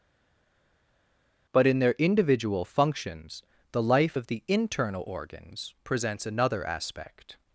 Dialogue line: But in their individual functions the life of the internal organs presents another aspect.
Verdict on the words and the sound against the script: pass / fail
pass